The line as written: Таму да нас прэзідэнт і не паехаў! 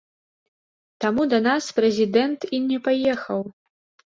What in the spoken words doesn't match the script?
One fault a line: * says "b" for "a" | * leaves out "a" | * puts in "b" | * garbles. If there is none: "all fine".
all fine